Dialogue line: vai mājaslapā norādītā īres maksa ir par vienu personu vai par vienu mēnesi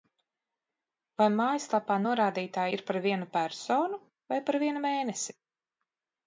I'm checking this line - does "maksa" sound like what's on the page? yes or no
no